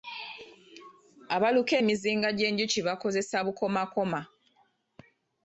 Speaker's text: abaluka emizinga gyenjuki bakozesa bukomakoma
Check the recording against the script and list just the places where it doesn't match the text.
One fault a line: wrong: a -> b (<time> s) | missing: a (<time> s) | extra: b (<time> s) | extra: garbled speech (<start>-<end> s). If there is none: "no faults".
no faults